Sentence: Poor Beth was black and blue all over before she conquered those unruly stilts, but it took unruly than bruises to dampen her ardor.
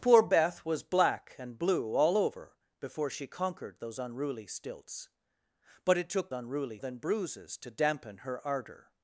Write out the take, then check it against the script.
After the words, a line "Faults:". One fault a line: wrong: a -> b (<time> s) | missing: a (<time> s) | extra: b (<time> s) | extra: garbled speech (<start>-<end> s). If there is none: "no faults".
Poor Beth was black and blue all over before she conquered those unruly stilts, but it took unruly than bruises to dampen her ardor.
Faults:
no faults